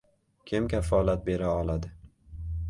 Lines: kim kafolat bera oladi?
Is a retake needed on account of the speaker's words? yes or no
no